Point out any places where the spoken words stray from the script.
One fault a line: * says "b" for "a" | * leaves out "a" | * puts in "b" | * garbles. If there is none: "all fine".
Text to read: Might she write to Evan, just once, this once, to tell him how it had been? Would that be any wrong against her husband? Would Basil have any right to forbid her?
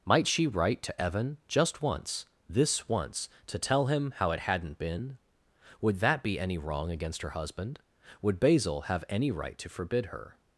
* says "hadn't" for "had"